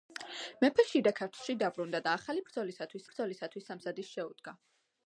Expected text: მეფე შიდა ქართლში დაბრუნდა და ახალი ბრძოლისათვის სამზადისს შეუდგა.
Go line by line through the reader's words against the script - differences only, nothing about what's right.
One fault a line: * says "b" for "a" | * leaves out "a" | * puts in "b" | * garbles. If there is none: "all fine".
* puts in "ბრძოლისათვის"